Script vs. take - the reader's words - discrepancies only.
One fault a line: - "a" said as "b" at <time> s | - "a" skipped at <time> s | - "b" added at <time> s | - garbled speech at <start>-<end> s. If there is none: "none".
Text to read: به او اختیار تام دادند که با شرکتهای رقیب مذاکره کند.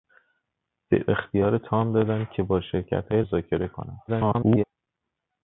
- "او" skipped at 1.1 s
- "رقیب" skipped at 3.2 s
- garbled speech at 4.1-4.6 s